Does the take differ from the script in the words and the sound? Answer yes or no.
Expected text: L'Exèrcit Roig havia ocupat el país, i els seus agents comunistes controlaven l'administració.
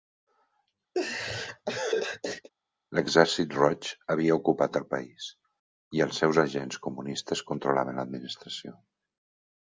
yes